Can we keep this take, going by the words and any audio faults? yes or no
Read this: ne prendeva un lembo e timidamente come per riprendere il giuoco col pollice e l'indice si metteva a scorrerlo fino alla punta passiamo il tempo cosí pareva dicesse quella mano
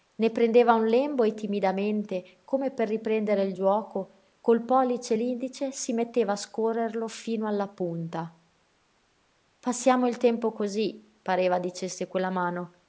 yes